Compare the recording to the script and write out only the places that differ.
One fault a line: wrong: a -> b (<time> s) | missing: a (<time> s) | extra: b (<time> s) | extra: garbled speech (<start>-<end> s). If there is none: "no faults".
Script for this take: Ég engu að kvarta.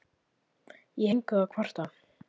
no faults